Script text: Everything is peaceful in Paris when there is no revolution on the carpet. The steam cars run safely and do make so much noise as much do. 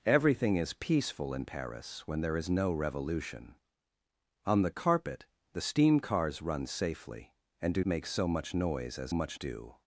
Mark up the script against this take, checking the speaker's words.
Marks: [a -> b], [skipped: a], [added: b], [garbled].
Everything is peaceful in Paris when there is no revolution on the carpet. The steam cars run safely and do make so much noise as much do.